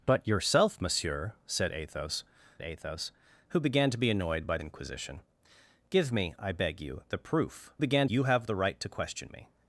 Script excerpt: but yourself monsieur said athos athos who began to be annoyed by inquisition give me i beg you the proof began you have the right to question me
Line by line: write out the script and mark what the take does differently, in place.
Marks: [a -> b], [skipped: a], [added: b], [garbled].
but yourself monsieur said athos athos who began to be annoyed by inquisition give me i beg you the proof began you have the right to question me